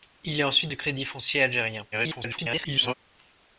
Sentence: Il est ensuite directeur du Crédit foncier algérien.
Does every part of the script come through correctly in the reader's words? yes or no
no